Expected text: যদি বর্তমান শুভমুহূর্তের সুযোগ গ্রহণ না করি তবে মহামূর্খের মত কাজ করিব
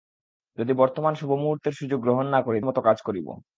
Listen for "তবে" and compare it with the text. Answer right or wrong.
wrong